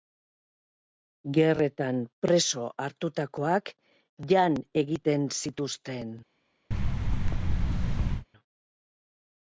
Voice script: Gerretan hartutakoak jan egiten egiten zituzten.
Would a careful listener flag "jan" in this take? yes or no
no